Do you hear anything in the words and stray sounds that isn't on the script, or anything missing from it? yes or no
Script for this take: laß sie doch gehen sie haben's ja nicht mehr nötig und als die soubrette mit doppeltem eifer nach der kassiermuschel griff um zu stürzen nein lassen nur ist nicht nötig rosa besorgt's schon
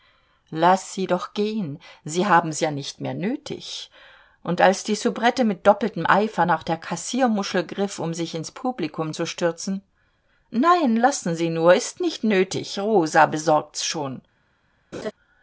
yes